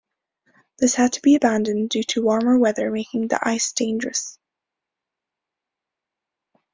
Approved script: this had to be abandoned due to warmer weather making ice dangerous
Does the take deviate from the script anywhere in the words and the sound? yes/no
yes